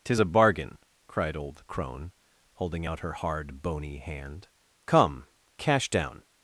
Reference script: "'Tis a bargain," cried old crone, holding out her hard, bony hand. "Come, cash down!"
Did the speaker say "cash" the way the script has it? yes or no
yes